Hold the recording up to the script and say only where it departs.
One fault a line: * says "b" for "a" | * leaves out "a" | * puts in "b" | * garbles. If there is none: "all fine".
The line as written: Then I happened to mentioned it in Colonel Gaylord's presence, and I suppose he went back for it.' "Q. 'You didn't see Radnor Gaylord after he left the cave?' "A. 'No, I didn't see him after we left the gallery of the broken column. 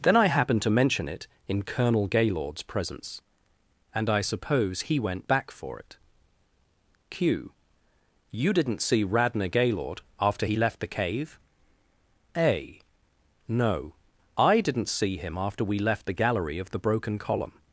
* says "mention" for "mentioned"